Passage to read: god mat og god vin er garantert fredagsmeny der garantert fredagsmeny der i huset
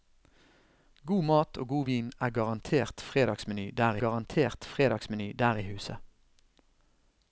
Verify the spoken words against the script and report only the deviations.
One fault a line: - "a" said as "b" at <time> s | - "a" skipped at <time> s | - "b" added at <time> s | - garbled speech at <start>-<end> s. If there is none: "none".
none